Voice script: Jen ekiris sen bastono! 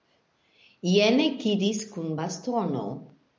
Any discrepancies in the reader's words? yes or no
yes